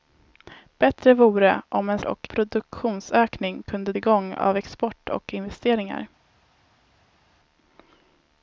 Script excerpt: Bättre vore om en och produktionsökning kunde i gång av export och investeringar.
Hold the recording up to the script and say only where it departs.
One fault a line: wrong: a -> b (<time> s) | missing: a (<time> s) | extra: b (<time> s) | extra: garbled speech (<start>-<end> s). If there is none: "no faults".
no faults